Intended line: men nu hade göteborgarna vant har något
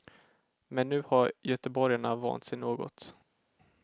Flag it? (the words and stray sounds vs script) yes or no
yes